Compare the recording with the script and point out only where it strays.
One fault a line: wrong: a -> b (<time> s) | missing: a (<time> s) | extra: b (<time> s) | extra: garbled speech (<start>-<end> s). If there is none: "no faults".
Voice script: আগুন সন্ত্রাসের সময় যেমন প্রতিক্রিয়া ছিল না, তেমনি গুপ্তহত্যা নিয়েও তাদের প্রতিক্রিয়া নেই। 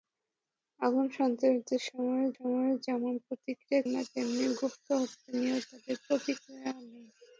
extra: সময় (2.3 s)
missing: ছিল (3.8 s)